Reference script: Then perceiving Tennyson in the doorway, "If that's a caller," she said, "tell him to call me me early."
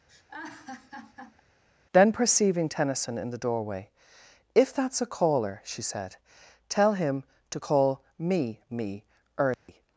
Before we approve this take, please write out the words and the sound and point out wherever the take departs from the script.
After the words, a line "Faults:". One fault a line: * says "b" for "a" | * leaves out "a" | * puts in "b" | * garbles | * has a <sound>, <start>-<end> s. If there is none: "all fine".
Then perceiving Tennyson in the doorway, "If that's a caller," she said, "tell him to call me me early."
Faults:
* has a laugh, 0.1-1.4 s
* has a dropout, 9.5-9.7 s